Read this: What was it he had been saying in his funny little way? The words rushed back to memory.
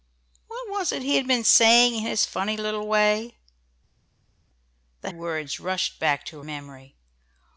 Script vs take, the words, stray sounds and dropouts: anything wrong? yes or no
no